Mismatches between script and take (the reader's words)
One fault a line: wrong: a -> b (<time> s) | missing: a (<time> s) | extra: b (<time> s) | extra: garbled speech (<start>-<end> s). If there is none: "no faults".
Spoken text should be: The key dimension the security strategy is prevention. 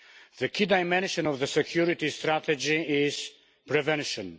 extra: of (1.2 s)